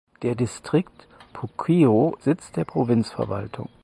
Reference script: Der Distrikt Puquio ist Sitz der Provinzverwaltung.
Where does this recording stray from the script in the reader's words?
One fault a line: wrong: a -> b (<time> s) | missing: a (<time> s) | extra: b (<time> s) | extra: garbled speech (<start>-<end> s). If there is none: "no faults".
missing: ist (2.2 s)